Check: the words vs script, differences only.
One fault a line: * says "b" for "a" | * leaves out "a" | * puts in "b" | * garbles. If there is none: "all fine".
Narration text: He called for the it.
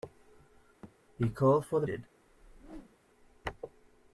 all fine